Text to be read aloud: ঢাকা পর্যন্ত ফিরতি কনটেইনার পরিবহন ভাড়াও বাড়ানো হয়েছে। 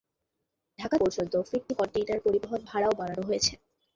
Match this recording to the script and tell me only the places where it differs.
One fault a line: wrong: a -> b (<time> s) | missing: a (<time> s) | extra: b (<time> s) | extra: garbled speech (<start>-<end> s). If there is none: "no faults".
no faults